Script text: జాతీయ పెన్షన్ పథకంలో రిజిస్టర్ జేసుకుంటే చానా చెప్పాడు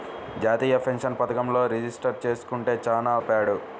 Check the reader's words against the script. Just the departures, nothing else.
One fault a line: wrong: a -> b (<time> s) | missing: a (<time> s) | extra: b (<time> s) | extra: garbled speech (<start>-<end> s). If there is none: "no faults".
no faults